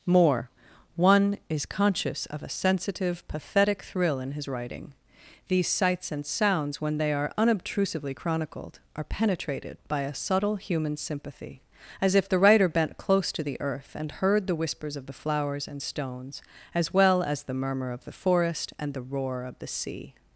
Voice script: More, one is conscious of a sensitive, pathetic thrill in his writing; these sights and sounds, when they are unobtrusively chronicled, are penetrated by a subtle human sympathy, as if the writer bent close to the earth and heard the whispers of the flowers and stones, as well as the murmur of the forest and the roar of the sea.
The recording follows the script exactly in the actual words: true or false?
true